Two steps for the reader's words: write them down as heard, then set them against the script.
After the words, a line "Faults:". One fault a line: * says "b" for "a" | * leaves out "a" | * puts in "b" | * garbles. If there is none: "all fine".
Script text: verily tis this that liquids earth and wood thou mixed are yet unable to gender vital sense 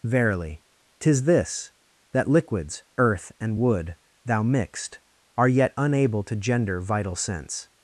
verily tis this that liquids earth and wood thou mixed are yet unable to gender vital sense
Faults:
all fine